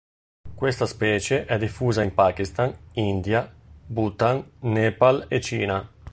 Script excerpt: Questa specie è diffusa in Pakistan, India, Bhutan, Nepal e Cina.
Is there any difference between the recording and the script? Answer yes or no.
no